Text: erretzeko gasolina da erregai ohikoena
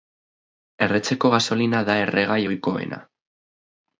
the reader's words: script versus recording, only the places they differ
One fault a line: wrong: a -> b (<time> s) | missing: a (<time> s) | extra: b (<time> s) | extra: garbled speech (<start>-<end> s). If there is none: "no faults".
no faults